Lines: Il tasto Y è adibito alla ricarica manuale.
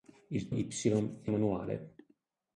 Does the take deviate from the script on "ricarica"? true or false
true